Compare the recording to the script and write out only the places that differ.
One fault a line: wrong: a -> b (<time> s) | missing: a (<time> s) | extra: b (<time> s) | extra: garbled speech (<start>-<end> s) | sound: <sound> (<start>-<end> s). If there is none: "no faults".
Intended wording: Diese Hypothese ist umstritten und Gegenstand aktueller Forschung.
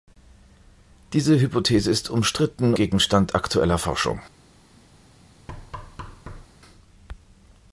missing: und (2.7 s)
sound: thud (5.5-6.5 s)